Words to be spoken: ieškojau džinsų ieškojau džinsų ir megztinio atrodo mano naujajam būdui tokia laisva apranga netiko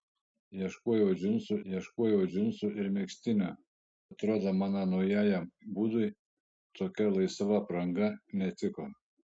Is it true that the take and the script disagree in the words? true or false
false